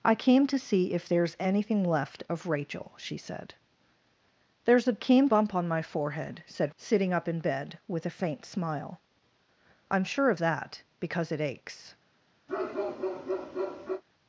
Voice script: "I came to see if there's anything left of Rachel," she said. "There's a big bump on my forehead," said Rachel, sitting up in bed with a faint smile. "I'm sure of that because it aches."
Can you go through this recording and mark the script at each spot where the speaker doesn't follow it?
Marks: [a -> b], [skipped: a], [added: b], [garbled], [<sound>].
"I came to see if there's anything left of Rachel," she said. "There's a [big -> came] bump on my forehead," said [skipped: Rachel,] sitting up in bed with a faint smile. "I'm sure of that because it aches." [bark]